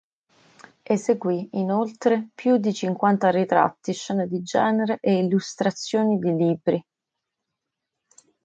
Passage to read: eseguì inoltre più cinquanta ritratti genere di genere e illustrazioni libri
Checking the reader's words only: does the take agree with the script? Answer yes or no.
no